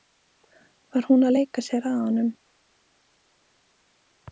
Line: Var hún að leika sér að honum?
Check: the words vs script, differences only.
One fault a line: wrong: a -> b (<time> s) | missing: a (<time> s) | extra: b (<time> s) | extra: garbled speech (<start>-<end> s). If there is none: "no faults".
no faults